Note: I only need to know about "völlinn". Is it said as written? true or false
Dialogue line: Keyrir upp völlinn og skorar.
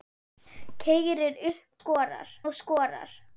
false